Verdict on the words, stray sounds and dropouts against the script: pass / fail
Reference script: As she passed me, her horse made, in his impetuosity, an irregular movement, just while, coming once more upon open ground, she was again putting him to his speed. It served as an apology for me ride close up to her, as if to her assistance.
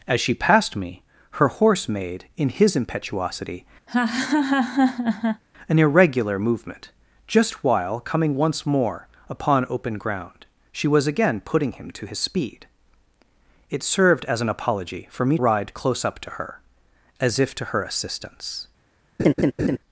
fail